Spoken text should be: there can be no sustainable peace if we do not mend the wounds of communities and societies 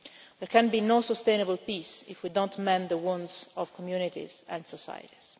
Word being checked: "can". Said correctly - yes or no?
yes